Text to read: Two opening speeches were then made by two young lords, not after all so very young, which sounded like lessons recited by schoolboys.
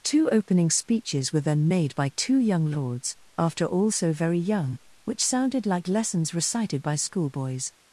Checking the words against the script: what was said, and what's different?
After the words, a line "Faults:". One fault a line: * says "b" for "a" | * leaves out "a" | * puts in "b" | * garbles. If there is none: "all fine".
Two opening speeches were then made by two young lords, after all so very young, which sounded like lessons recited by schoolboys.
Faults:
* leaves out "not"